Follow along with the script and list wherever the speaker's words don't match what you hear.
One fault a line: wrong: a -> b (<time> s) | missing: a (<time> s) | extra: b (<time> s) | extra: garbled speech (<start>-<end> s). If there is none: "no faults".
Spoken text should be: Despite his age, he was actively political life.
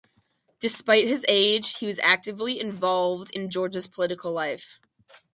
extra: involved in Georgia's (2.6 s)